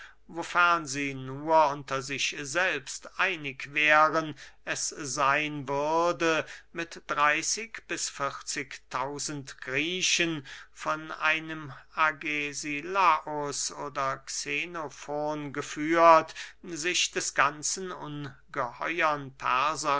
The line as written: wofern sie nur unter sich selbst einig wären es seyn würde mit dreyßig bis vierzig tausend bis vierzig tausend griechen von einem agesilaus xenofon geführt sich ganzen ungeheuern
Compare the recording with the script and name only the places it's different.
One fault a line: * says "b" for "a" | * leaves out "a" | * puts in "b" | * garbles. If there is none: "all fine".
* leaves out "bis vierzig tausend"
* puts in "oder"
* puts in "des"